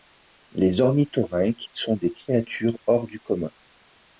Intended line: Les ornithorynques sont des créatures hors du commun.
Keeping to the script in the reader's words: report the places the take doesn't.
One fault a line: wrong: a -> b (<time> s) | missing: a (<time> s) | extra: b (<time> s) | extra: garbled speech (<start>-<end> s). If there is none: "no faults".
no faults